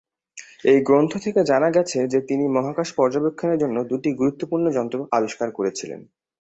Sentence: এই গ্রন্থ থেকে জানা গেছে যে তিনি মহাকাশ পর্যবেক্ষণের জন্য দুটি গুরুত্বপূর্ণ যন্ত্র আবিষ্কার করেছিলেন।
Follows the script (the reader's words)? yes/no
yes